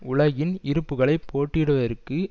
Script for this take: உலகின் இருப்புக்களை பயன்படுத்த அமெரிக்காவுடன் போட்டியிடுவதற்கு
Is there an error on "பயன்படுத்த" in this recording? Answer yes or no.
yes